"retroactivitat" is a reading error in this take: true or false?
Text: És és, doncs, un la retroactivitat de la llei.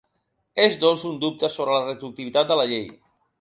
false